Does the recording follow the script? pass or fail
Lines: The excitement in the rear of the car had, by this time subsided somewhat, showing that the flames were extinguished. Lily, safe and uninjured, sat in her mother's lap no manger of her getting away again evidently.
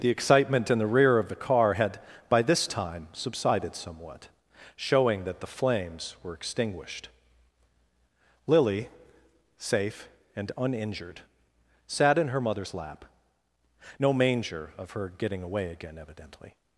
pass